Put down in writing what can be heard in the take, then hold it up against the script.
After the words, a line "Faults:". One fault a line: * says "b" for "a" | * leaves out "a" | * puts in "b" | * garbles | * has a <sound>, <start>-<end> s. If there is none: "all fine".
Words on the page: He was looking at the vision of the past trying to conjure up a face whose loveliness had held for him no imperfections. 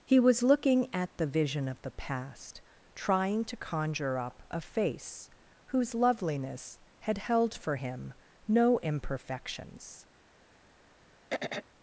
He was looking at the vision of the past trying to conjure up a face whose loveliness had held for him no imperfections.
Faults:
* has a throat clearing, 11.3-11.7 s